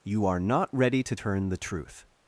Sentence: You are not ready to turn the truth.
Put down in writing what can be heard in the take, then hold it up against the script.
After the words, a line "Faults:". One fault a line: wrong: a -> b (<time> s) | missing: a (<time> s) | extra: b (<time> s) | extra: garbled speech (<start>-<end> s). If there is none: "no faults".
You are not ready to turn the truth.
Faults:
no faults